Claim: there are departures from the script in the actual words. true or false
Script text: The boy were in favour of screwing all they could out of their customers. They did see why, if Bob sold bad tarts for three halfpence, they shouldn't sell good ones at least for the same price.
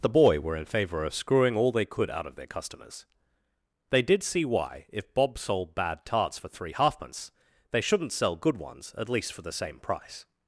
false